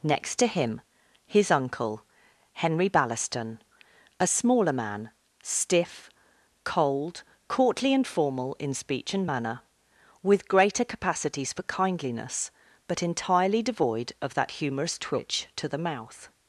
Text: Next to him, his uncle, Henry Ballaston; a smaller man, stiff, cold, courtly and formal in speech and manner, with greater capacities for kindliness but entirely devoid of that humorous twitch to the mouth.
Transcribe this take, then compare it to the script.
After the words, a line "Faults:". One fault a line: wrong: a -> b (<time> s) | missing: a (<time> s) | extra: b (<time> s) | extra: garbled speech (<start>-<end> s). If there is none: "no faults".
Next to him, his uncle, Henry Ballaston; a smaller man, stiff, cold, courtly and formal in speech and manner, with greater capacities for kindliness but entirely devoid of that humorous twitch to the mouth.
Faults:
no faults